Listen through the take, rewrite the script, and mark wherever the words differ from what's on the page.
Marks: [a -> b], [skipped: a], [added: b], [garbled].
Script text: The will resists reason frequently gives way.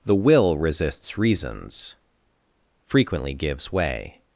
The will resists [reason -> reasons] frequently gives way.